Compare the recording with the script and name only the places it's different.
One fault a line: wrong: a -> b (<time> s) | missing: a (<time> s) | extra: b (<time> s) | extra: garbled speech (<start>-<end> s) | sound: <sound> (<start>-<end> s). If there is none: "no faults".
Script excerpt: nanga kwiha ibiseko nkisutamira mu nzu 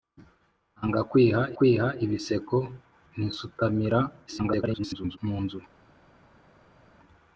extra: kwiha (1.6 s)
extra: garbled speech (4.3-5.2 s)